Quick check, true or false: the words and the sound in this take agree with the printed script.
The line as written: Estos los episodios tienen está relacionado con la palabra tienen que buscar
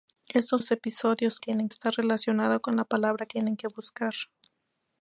true